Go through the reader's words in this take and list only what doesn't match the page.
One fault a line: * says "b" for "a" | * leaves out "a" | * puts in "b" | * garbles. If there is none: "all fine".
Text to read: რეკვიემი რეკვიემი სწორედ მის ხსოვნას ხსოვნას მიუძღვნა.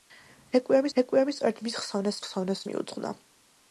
all fine